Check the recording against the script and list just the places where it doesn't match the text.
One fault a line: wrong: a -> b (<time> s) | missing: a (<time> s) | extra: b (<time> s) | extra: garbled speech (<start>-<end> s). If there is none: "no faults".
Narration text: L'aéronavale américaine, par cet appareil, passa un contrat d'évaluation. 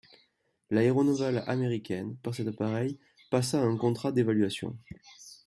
no faults